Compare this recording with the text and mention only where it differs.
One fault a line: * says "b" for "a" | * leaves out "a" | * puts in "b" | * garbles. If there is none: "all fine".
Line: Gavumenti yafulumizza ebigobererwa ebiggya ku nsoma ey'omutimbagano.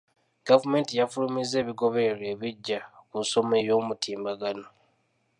all fine